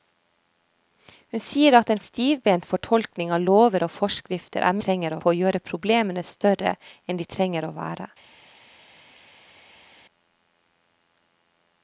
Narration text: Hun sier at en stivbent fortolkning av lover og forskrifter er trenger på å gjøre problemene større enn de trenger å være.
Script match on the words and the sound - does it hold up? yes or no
yes